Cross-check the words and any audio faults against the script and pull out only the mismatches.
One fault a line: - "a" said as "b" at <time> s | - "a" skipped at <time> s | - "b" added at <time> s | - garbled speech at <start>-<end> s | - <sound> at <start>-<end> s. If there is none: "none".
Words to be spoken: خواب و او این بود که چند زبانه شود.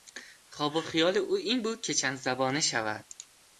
- "خیال" added at 0.8 s